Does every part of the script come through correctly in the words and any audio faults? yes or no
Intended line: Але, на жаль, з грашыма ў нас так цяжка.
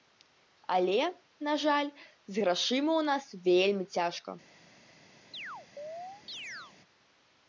no